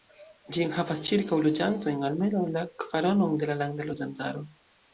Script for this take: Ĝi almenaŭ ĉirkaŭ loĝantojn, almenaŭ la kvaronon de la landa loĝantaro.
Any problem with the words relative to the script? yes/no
yes